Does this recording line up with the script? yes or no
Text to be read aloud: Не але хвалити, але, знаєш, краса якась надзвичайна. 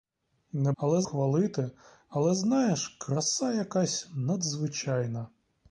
yes